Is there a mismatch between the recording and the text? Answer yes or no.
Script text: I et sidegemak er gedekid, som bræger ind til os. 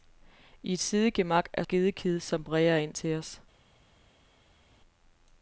no